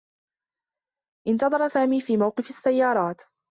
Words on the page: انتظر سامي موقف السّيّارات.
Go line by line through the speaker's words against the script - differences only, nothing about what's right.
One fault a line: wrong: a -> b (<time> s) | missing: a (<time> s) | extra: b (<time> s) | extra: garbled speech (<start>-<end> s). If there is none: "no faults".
extra: في (2.0 s)